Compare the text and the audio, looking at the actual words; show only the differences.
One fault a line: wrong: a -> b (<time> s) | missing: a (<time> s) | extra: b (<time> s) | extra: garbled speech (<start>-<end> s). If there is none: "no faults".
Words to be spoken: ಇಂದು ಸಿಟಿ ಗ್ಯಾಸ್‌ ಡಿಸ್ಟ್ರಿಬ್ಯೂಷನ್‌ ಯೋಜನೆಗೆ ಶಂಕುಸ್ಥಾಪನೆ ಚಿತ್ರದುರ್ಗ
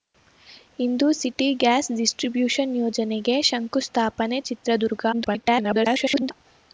extra: garbled speech (5.1-6.3 s)